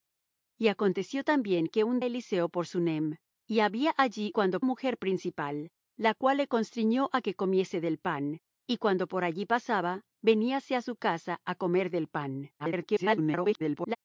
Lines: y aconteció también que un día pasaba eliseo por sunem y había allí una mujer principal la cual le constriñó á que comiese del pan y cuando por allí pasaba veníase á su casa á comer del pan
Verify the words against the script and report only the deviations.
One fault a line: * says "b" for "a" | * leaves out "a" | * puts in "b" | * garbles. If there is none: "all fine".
* leaves out "día pasaba"
* says "cuando" for "una"
* garbles